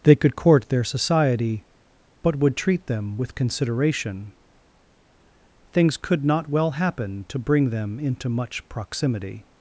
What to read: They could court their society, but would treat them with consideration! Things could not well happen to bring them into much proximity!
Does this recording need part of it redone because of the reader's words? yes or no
no